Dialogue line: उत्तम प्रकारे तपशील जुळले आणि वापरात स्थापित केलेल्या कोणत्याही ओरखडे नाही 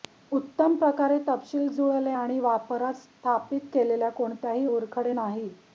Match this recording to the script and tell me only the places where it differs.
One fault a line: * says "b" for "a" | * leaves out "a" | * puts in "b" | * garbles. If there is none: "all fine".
all fine